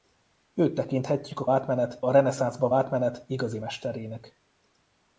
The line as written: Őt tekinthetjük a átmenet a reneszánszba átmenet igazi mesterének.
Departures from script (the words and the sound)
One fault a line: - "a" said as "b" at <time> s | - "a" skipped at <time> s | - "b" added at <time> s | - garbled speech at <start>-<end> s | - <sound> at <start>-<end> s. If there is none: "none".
none